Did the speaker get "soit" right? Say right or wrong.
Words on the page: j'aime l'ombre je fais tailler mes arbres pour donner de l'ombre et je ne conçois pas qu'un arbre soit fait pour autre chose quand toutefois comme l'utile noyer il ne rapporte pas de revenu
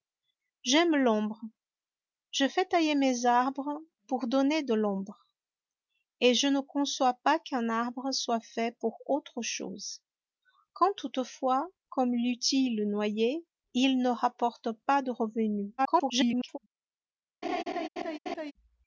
right